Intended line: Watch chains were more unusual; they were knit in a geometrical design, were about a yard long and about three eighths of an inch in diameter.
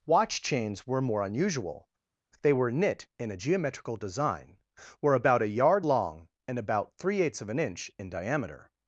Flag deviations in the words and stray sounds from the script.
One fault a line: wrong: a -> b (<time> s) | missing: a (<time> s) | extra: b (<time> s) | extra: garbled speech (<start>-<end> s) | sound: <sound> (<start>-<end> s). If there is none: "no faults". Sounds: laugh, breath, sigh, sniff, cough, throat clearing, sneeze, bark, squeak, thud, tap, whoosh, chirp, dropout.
no faults